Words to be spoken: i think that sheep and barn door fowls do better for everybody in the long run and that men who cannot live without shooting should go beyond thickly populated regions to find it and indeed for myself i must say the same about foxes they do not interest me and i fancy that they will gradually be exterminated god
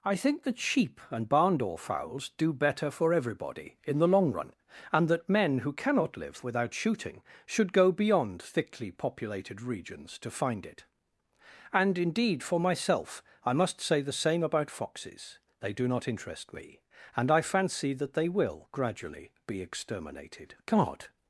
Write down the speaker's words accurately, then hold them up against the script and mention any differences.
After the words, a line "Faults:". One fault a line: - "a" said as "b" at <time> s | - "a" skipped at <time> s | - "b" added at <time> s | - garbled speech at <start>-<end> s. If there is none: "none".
i think that sheep and barn door fowls do better for everybody in the long run and that men who cannot live without shooting should go beyond thickly populated regions to find it and indeed for myself i must say the same about foxes they do not interest me and i fancy that they will gradually be exterminated god
Faults:
none